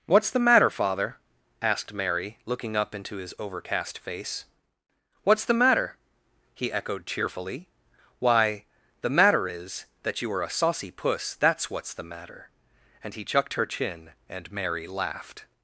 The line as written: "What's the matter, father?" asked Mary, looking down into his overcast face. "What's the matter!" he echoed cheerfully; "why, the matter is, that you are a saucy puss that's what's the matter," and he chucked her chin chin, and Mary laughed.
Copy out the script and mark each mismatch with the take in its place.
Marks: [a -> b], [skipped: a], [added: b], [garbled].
"What's the matter, father?" asked Mary, looking [down -> up] into his overcast face. "What's the matter!" he echoed cheerfully; "why, the matter is, that you are a saucy puss that's what's the matter," and he chucked her chin [skipped: chin,] and Mary laughed.